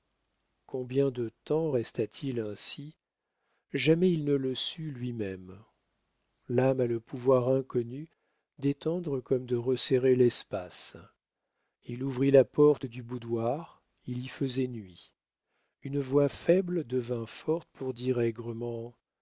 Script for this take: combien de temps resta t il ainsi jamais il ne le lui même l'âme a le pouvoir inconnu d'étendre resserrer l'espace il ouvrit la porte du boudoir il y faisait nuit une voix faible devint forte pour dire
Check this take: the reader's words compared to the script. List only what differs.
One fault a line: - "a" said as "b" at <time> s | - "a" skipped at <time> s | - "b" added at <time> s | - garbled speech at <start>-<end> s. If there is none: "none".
- "sut" added at 4.5 s
- "comme de" added at 9.2 s